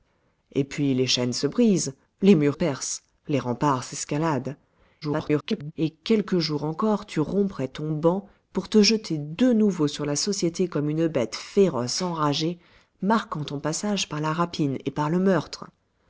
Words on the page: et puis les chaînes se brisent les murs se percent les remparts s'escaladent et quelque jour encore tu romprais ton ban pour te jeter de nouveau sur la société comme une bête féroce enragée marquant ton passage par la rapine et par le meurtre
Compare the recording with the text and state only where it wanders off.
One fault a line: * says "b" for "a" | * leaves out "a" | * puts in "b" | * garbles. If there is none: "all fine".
* leaves out "se"
* garbles